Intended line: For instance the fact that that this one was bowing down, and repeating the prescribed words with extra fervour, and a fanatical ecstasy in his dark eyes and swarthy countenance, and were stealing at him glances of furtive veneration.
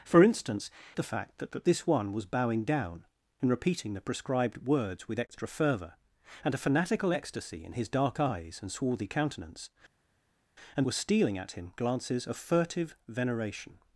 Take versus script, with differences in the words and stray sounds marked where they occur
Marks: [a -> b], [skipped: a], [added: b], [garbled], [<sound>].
For instance the fact that that this one was bowing down, and repeating the prescribed words with extra fervour, and a fanatical ecstasy in his dark eyes and swarthy countenance, and were stealing at him glances of furtive veneration.